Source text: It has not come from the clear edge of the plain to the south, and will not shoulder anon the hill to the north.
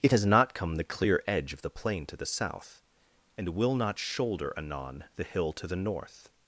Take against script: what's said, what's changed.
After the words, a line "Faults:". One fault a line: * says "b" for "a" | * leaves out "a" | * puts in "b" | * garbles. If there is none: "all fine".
It has not come the clear edge of the plain to the south, and will not shoulder anon the hill to the north.
Faults:
* leaves out "from"